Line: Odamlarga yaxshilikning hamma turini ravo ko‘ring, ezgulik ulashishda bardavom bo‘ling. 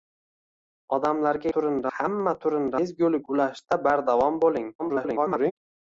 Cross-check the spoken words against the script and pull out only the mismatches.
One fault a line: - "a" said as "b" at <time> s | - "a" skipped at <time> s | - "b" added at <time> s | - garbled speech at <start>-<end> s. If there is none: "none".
- "yaxshilikning" said as "turini" at 1.6 s
- "ravo ko‘ring" skipped at 2.7 s
- garbled speech at 4.8-5.5 s